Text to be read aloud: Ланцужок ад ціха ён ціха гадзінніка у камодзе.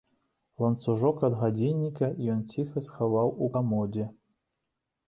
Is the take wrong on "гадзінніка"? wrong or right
wrong